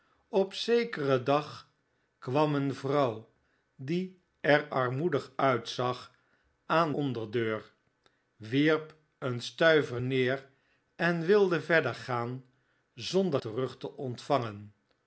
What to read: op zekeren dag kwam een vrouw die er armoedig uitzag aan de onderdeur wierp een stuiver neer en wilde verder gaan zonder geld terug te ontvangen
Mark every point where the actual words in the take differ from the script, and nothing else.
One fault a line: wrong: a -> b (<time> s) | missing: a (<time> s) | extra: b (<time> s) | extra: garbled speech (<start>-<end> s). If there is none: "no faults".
missing: de (6.9 s)
missing: geld (13.4 s)